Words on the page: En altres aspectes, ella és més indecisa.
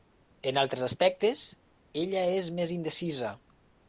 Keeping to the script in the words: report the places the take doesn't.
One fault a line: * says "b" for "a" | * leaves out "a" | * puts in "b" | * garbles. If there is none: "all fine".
all fine